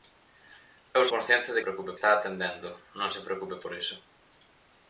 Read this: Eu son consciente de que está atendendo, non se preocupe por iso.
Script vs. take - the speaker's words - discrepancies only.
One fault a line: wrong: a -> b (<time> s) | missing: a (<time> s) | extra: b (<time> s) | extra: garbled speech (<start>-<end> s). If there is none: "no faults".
missing: son (1.0 s)
wrong: que -> preocupe (1.6 s)